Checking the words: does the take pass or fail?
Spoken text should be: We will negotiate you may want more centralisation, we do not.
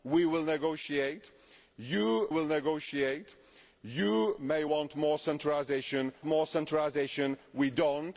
fail